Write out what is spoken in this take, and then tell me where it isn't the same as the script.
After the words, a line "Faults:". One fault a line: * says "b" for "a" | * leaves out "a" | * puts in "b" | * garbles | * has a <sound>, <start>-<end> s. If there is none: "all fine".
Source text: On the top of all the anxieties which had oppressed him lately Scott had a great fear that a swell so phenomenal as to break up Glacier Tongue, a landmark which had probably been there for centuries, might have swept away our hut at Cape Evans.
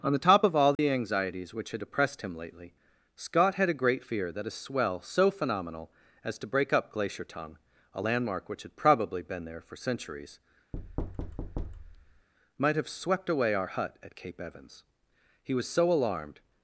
On the top of all the anxieties which had oppressed him lately Scott had a great fear that a swell so phenomenal as to break up Glacier Tongue, a landmark which had probably been there for centuries, might have swept away our hut at Cape Evans. He was so alarmed
Faults:
* has a dropout, 0.7-0.8 s
* has a thud, 10.7-12.3 s
* puts in "He was so alarmed"